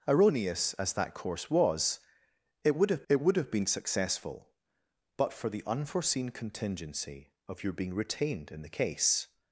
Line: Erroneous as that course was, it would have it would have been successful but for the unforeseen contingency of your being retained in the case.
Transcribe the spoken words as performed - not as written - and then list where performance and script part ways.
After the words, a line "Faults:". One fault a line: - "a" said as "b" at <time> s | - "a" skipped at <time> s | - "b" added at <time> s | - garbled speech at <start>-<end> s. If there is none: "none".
Erroneous as that course was, it would have it would have been successful but for the unforeseen contingency of your being retained in the case.
Faults:
none